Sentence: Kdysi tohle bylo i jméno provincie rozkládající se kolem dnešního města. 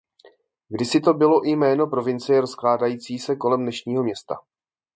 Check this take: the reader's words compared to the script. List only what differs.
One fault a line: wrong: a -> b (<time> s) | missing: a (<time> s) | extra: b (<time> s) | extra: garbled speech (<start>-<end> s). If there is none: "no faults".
wrong: tohle -> to (1.0 s)